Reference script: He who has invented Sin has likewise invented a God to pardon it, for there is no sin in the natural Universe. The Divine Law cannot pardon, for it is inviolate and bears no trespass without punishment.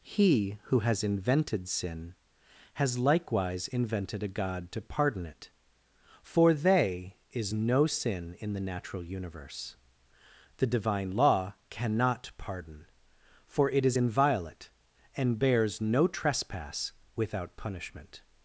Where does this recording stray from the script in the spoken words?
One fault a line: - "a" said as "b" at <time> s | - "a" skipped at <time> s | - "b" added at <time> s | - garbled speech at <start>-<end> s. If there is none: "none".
- "there" said as "they" at 6.5 s